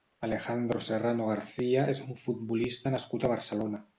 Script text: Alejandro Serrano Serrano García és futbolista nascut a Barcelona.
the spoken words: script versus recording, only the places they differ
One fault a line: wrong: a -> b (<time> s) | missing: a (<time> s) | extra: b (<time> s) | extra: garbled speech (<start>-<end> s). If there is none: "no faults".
missing: Serrano (1.3 s)
extra: un (2.0 s)